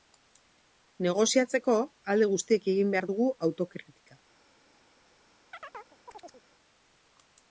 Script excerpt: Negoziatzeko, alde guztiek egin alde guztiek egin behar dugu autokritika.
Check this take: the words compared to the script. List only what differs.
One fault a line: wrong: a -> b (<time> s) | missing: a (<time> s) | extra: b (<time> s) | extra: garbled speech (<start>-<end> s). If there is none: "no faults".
missing: alde guztiek egin (3.0 s)